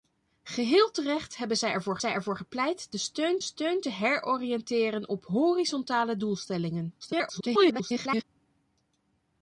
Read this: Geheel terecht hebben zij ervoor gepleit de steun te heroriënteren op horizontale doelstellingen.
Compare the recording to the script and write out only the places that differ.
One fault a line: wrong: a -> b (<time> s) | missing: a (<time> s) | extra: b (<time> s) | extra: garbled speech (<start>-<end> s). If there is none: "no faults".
extra: zij ervoor (2.0 s)
extra: steun (3.4 s)
extra: garbled speech (7.0-8.2 s)